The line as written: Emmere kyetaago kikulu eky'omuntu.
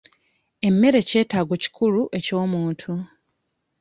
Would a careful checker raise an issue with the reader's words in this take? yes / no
no